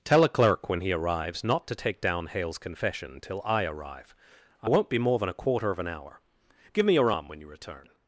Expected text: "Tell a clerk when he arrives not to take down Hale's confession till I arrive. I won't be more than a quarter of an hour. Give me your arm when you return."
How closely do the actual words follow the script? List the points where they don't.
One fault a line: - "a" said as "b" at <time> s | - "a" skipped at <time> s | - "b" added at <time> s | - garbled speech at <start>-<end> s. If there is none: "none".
none